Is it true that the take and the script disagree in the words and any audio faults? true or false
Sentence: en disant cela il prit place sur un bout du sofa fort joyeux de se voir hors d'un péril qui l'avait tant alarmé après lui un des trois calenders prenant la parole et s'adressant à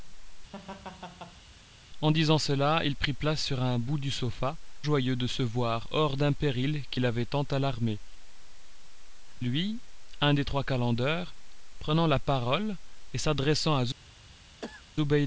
true